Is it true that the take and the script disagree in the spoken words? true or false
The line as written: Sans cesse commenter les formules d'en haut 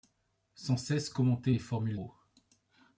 true